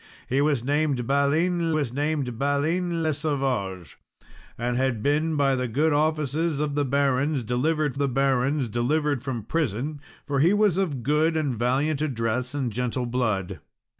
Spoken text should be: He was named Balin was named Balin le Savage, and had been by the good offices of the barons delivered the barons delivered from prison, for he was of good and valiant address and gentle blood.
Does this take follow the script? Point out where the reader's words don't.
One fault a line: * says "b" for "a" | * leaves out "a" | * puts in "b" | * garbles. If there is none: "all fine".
all fine